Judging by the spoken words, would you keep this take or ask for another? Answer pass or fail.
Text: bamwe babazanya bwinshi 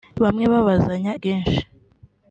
pass